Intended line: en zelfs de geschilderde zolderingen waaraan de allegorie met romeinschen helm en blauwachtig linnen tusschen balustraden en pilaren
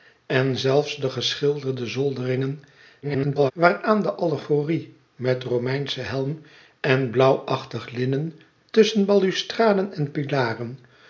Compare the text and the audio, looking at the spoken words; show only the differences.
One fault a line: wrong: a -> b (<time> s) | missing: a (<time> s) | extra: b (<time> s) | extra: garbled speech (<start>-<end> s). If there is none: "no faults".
extra: garbled speech (3.0-3.5 s)